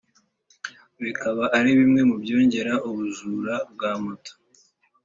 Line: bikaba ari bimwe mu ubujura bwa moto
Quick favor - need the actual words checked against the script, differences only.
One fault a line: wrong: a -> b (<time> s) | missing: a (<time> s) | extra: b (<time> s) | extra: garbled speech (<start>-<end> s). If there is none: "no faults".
extra: byongera (2.2 s)